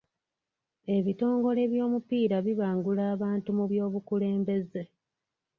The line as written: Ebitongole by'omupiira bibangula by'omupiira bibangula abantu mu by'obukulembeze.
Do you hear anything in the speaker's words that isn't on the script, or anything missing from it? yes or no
yes